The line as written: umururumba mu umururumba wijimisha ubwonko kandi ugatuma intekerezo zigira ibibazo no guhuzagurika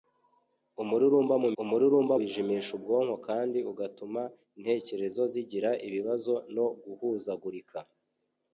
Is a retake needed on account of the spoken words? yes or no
no